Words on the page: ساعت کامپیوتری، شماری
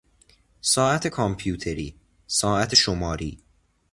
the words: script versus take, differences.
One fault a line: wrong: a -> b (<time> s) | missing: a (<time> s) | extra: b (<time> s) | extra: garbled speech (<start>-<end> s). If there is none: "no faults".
extra: ساعت (2.3 s)